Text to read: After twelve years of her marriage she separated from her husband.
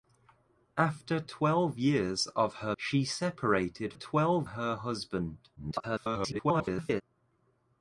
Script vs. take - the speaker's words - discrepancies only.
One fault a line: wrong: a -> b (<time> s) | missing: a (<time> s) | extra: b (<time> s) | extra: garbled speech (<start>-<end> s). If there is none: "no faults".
missing: marriage (2.8 s)
wrong: from -> twelve (3.9 s)
extra: garbled speech (5.6-7.0 s)